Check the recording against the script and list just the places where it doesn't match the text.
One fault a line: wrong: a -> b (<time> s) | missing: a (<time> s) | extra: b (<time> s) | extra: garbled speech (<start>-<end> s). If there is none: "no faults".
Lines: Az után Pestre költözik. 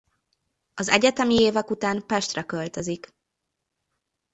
extra: egyetemi évek (0.9 s)